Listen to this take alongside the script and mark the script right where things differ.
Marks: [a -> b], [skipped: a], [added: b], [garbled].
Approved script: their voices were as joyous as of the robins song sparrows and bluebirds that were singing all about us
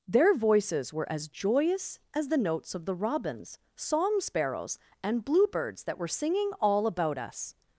their voices were as joyous as [added: the notes] of the robins song sparrows and bluebirds that were singing all about us